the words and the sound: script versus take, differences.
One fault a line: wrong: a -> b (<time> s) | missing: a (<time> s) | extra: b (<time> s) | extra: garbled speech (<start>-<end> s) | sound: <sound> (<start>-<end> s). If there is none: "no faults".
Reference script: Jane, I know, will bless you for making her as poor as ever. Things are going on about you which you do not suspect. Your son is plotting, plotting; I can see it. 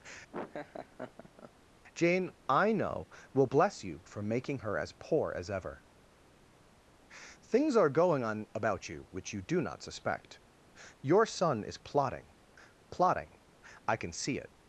sound: laugh (0.3-1.5 s)